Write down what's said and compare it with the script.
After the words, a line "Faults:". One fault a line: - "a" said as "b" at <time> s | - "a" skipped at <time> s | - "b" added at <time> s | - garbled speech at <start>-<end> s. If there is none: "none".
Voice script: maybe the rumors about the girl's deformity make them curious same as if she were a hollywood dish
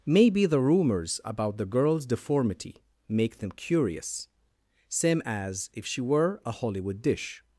maybe the rumors about the girl's deformity make them curious same as if she were a hollywood dish
Faults:
none